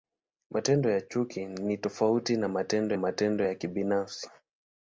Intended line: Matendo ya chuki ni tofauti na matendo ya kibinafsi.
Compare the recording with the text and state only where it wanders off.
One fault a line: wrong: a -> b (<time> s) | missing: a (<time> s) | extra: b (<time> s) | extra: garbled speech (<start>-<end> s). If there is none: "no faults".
extra: matendo (2.9 s)